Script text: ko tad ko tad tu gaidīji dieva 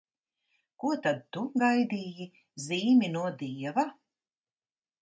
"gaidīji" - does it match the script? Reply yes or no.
no